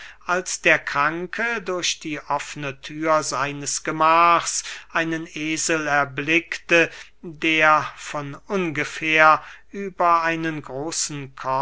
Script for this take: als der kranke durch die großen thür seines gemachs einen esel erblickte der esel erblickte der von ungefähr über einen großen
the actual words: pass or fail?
fail